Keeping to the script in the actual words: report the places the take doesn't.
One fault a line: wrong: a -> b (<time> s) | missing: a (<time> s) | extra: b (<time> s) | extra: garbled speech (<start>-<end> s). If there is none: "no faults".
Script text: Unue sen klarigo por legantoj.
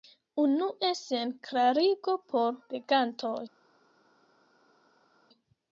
no faults